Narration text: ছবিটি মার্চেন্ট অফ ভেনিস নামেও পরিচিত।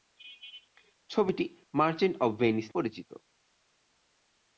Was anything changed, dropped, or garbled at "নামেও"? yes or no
yes